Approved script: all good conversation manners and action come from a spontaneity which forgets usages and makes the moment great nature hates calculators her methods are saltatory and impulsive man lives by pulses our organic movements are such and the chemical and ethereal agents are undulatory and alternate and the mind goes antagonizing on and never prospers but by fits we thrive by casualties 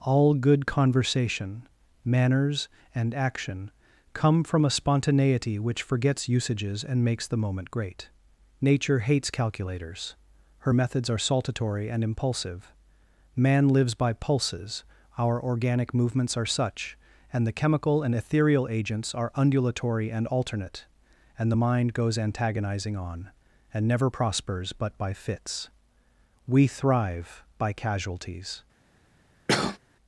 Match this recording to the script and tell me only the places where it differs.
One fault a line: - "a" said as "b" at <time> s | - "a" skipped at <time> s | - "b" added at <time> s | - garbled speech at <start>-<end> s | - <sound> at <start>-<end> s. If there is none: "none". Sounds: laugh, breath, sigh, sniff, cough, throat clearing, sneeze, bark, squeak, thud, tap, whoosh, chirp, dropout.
- cough at 29.5-29.8 s